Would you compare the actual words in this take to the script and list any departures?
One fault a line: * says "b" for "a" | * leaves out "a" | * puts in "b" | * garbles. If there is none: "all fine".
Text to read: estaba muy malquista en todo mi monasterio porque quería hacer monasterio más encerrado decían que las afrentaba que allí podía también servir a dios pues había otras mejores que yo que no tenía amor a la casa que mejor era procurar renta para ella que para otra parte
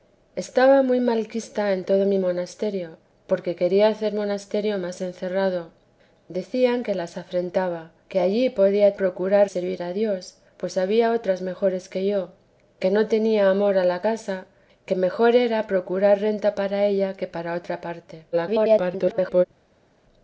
* says "procurar" for "también"
* garbles